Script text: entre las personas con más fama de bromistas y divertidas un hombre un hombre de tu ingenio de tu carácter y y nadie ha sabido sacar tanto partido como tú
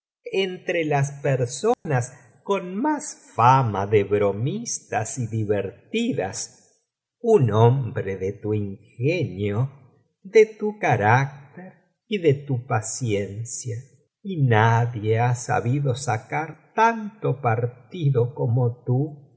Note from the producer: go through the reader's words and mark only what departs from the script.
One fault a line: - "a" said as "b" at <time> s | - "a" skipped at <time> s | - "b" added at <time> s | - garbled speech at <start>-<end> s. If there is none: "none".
- "un hombre" skipped at 8.2 s
- "de tu paciencia" added at 12.2 s